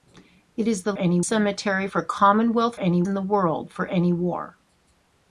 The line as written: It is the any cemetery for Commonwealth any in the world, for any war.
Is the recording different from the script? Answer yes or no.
no